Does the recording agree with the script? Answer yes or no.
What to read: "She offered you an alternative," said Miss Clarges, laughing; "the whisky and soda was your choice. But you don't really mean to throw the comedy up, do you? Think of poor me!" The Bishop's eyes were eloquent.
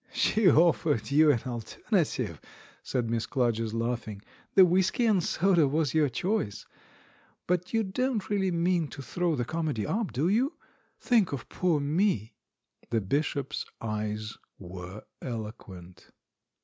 yes